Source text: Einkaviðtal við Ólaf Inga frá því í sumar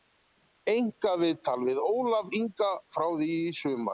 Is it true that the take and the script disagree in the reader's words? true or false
false